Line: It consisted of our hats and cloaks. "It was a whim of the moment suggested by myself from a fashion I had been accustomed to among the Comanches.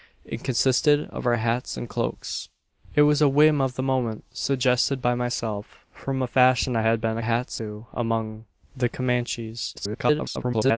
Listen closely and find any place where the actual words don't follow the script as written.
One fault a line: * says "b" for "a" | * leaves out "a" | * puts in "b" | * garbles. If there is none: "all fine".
* says "hats" for "accustomed"
* garbles